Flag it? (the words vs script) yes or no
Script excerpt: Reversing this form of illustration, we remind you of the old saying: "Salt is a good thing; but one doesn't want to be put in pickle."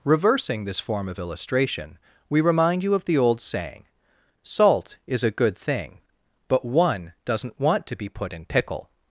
no